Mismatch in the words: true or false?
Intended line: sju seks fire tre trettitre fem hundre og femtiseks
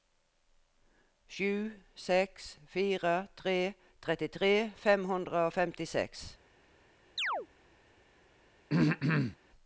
false